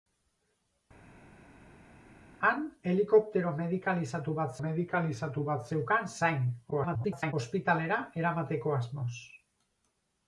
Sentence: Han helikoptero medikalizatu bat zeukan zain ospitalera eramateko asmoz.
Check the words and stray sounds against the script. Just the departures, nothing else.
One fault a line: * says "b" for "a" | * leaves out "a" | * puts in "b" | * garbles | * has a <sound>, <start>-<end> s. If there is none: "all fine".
* puts in "medikalizatu bat"
* garbles